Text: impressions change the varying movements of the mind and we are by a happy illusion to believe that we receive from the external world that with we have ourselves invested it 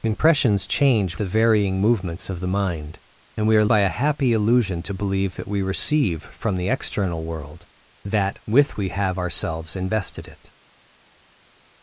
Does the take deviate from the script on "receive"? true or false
false